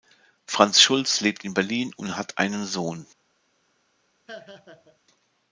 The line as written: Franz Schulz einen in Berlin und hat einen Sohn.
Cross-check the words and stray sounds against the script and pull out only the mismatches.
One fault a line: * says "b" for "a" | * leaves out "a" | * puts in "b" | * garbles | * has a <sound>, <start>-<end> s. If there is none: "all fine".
* says "lebt" for "einen"
* has a laugh, 4.3-5.0 s